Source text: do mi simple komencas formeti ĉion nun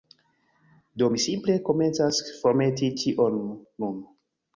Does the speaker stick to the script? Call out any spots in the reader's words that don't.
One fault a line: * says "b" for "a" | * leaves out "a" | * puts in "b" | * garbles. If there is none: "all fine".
all fine